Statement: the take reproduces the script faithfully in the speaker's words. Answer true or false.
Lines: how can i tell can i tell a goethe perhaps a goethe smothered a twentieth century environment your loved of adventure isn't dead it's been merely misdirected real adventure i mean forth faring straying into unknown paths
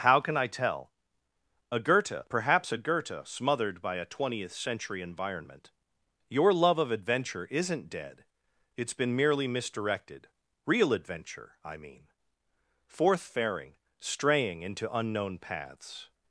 false